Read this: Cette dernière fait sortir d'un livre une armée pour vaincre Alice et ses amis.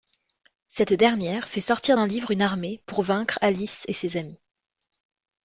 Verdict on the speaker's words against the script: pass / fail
pass